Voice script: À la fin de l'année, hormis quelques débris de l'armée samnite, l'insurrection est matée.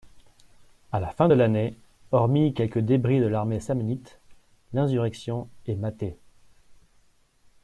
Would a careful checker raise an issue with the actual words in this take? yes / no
no